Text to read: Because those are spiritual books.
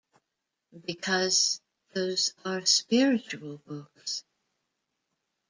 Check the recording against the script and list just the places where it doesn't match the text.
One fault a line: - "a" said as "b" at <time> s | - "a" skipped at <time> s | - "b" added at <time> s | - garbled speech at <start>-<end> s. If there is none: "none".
none